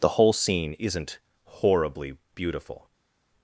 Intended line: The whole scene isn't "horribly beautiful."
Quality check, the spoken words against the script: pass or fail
pass